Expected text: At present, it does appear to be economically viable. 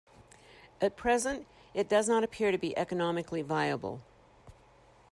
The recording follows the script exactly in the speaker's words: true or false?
false